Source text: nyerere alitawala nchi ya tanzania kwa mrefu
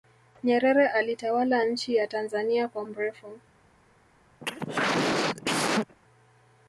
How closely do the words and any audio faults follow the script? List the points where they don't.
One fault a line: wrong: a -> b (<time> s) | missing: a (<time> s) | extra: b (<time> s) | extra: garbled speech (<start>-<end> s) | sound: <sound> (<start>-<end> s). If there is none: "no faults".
sound: cough (4.4-6.0 s)